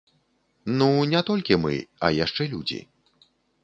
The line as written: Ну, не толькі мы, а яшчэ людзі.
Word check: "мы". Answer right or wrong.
right